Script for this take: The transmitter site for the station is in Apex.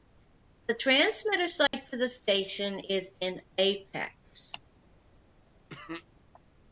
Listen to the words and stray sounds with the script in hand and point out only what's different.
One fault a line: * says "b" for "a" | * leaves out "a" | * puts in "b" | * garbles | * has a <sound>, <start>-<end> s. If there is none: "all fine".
* has a dropout, 1.7-1.7 s
* has a cough, 5.7-6.1 s